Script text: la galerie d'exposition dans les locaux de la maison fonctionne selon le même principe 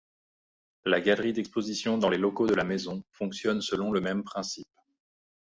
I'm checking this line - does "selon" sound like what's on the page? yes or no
yes